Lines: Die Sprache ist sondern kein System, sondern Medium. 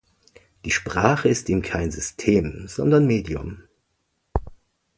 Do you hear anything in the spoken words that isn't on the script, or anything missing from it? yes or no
yes